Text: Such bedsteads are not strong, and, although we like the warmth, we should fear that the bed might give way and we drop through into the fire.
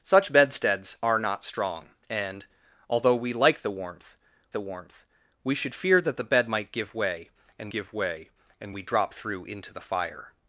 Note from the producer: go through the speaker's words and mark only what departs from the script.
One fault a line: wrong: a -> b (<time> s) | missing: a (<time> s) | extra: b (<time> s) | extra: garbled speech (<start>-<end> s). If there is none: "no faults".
extra: the warmth (4.5 s)
extra: give way and (7.7 s)